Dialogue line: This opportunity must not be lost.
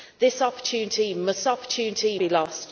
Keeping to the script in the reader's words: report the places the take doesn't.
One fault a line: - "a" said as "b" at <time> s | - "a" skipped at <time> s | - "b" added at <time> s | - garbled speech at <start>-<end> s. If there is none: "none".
- "not" said as "opportunity" at 1.5 s